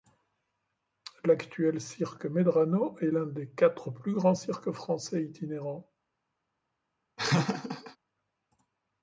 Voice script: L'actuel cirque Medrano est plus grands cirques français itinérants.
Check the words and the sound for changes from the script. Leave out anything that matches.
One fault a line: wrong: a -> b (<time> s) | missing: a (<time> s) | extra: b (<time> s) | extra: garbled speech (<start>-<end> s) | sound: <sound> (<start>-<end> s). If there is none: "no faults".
extra: l'un des quatre (3.1 s)
sound: laugh (7.2-8.0 s)